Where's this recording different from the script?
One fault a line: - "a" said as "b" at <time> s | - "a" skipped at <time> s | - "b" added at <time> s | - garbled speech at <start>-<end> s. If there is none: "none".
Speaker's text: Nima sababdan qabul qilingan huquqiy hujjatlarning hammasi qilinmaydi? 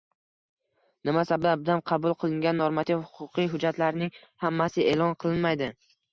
- "normativ" added at 2.6 s
- "e'lon" added at 5.0 s